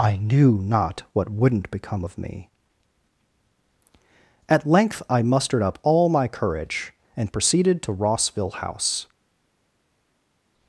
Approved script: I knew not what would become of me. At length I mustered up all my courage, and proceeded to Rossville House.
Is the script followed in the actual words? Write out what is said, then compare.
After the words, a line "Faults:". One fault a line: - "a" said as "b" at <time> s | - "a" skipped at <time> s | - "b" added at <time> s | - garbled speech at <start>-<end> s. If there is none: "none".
I knew not what wouldn't become of me. At length I mustered up all my courage, and proceeded to Rossville House.
Faults:
- "would" said as "wouldn't" at 1.3 s